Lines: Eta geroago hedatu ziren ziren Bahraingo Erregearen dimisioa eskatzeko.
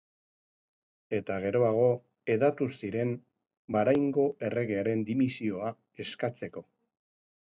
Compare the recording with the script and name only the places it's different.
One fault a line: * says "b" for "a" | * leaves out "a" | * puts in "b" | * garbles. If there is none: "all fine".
* leaves out "ziren"